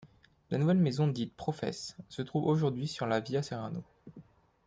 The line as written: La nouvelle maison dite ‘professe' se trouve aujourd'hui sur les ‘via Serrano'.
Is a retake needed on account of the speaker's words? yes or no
yes